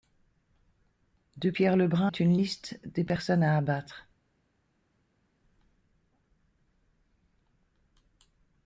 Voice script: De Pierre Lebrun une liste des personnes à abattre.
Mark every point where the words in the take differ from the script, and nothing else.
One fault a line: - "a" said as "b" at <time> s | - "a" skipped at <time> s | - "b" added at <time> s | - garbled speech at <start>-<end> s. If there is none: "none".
none